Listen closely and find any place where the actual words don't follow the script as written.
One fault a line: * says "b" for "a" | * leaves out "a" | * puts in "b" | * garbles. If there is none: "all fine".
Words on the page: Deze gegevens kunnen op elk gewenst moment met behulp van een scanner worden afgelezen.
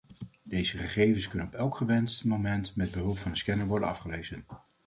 all fine